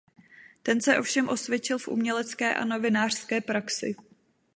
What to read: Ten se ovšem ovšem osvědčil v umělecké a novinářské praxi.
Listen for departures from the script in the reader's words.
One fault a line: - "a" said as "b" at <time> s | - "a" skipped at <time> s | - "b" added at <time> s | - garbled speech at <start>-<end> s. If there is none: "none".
- "ovšem" skipped at 1.3 s